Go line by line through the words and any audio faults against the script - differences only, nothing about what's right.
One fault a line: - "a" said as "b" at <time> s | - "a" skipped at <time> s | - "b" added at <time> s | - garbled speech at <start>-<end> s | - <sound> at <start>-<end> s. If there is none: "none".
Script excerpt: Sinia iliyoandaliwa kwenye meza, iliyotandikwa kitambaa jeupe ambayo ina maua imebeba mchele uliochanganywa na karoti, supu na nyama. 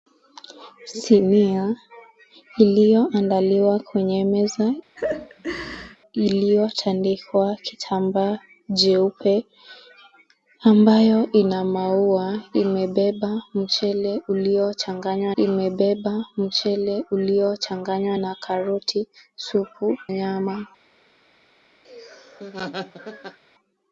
- laugh at 5.0-6.0 s
- "imebeba mchele uliochanganywa" added at 15.4 s
- "na" skipped at 20.0 s
- laugh at 21.8-23.4 s